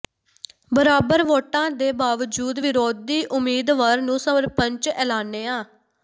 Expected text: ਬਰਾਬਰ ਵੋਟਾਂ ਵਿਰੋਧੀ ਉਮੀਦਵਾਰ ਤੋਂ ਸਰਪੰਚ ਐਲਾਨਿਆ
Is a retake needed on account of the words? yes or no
yes